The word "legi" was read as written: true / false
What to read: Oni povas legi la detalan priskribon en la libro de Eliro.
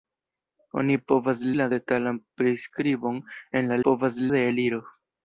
false